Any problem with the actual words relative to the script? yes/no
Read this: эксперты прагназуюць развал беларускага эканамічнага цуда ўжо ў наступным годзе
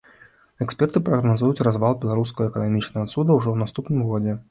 no